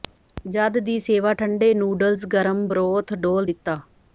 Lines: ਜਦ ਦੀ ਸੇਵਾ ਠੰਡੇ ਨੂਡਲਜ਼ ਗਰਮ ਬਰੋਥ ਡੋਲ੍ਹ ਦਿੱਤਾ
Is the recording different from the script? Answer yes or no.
no